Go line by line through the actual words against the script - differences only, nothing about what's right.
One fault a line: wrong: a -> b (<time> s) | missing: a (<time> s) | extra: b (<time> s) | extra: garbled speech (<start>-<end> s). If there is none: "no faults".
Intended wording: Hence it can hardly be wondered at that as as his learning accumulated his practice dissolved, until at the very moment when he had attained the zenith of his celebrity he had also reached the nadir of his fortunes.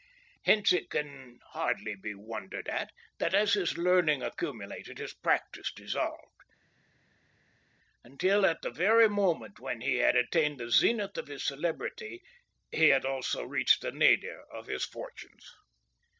missing: as (3.5 s)